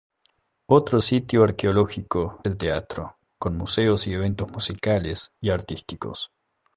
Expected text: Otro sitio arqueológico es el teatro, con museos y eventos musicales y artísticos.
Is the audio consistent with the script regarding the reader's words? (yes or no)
no